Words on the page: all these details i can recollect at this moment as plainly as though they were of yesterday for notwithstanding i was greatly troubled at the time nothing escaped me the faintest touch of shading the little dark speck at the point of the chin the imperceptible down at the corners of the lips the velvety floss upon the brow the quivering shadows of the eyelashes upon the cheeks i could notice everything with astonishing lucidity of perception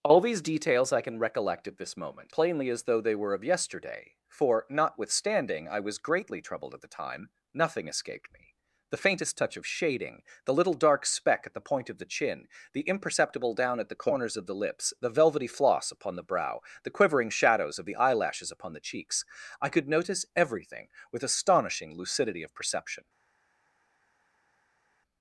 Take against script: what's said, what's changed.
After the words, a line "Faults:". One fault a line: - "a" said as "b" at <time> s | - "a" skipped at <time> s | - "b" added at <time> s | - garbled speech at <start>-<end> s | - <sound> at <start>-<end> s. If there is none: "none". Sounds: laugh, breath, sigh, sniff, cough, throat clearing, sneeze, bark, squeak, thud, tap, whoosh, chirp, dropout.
all these details i can recollect at this moment plainly as though they were of yesterday for notwithstanding i was greatly troubled at the time nothing escaped me the faintest touch of shading the little dark speck at the point of the chin the imperceptible down at the corners of the lips the velvety floss upon the brow the quivering shadows of the eyelashes upon the cheeks i could notice everything with astonishing lucidity of perception
Faults:
- "as" skipped at 2.3 s